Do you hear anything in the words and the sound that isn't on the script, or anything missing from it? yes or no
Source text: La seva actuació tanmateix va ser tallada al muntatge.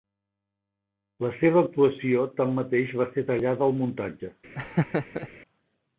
yes